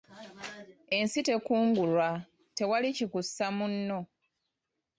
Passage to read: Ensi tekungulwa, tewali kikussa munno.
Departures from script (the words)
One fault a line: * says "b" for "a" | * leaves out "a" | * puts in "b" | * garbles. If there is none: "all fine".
all fine